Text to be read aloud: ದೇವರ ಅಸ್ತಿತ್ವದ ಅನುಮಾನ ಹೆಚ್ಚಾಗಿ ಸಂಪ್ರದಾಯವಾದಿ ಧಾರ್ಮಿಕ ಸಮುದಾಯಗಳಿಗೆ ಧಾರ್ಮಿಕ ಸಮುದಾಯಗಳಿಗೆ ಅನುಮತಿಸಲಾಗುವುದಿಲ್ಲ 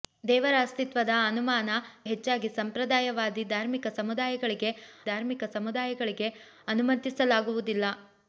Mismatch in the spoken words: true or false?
false